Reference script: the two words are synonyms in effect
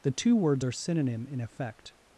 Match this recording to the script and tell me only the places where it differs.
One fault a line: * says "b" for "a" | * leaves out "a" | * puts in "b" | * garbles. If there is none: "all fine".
* says "synonym" for "synonyms"